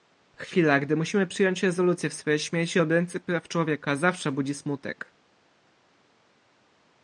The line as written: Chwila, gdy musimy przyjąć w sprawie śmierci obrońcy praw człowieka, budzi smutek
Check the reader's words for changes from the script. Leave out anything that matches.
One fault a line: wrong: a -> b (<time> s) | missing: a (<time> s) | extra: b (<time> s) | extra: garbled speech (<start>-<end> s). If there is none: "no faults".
extra: rezolucję (1.6 s)
extra: zawsze (3.9 s)